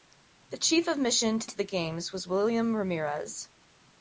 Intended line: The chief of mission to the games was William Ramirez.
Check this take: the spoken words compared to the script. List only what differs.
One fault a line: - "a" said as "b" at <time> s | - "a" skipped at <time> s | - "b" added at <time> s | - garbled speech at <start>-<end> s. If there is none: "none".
- "to" added at 1.4 s